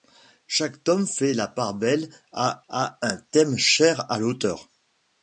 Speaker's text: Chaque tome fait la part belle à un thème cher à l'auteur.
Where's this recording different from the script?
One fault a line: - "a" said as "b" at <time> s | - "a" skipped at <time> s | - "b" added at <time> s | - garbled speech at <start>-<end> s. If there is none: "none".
- "à" added at 2.7 s